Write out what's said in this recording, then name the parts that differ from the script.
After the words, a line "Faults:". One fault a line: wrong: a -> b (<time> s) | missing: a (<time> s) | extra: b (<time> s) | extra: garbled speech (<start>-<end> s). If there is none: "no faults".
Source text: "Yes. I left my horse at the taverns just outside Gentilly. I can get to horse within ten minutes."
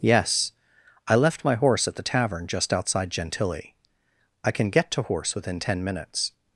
"Yes. I left my horse at the tavern just outside Gentilly. I can get to horse within ten minutes."
Faults:
wrong: taverns -> tavern (2.0 s)